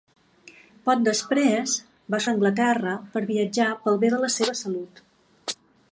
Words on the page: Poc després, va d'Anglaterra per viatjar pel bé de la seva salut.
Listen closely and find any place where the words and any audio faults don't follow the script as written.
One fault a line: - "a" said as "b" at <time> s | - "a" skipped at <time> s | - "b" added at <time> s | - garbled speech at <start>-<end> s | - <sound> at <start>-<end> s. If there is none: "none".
none